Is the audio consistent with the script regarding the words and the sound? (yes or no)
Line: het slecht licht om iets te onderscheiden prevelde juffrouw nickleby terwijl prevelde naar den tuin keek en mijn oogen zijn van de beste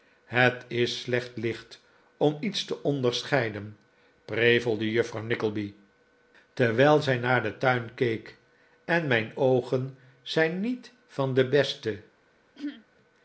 no